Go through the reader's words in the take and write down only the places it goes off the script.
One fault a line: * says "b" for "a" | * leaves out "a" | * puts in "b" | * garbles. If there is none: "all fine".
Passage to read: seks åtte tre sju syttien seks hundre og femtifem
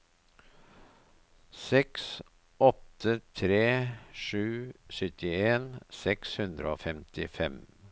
all fine